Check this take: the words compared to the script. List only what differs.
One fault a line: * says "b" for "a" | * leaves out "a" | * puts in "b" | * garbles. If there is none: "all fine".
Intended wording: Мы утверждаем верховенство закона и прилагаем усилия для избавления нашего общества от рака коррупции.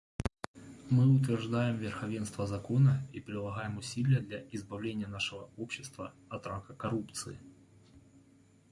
all fine